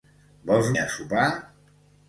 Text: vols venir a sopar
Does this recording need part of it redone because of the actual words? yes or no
yes